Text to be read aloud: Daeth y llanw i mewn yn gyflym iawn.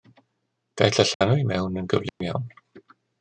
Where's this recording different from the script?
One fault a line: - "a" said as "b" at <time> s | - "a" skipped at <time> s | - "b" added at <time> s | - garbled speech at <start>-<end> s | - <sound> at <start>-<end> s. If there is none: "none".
- dropout at 1.1-1.2 s
- dropout at 2.1-2.2 s